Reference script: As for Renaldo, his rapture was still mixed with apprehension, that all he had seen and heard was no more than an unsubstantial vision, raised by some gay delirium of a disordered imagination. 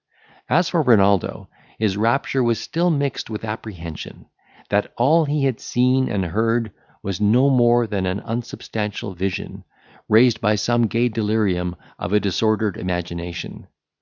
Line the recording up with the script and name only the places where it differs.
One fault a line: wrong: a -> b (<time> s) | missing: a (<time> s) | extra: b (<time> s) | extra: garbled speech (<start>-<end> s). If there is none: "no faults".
no faults